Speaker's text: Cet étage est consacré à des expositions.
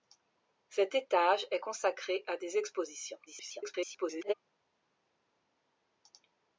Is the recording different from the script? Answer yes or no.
yes